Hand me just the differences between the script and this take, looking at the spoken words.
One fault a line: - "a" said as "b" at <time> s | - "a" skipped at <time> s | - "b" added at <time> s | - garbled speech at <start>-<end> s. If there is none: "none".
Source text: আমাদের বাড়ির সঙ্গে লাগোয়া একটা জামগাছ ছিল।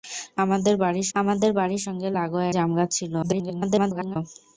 - "আমাদের বাড়ির" added at 1.1 s
- "একটা" skipped at 2.5 s
- garbled speech at 3.2-4.2 s